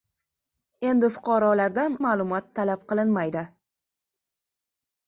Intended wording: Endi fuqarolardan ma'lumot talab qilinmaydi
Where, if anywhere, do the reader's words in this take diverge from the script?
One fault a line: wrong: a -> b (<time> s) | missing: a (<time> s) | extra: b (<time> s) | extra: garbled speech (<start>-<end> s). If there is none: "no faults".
no faults